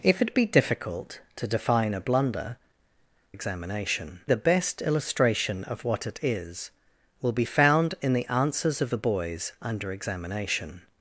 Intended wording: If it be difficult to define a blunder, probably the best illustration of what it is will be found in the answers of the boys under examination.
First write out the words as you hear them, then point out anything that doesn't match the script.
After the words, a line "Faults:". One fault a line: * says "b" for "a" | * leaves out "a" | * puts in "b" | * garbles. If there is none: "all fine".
If it be difficult to define a blunder, examination the best illustration of what it is will be found in the answers of the boys under examination.
Faults:
* says "examination" for "probably"